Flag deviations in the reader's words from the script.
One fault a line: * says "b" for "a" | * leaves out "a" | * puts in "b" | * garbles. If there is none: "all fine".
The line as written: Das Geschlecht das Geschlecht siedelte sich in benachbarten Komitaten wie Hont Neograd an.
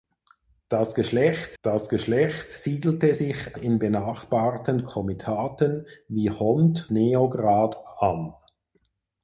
all fine